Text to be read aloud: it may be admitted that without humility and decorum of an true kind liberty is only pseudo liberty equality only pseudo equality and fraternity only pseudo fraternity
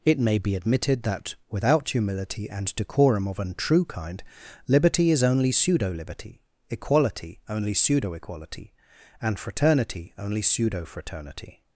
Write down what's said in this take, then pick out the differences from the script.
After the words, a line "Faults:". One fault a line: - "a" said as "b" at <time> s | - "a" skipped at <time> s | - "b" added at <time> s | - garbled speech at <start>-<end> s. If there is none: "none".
it may be admitted that without humility and decorum of an true kind liberty is only pseudo liberty equality only pseudo equality and fraternity only pseudo fraternity
Faults:
none